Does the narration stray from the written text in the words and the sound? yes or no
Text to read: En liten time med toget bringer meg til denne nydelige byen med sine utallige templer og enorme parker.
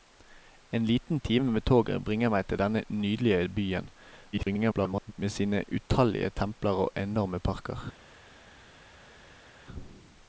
yes